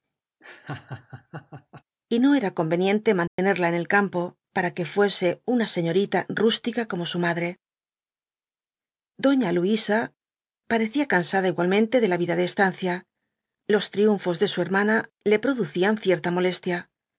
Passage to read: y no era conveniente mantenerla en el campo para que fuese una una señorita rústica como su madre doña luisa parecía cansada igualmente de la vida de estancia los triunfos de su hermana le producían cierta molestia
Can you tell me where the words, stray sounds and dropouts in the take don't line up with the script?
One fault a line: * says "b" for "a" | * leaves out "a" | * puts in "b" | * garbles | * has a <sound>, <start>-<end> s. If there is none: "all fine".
* has a laugh, 0.4-1.8 s
* has a dropout, 3.3-3.4 s
* leaves out "una"